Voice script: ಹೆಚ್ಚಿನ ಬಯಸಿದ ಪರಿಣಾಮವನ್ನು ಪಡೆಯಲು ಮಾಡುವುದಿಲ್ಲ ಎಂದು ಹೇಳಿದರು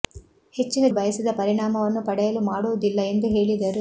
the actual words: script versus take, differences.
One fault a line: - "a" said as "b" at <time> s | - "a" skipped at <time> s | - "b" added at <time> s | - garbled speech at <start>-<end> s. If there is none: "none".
none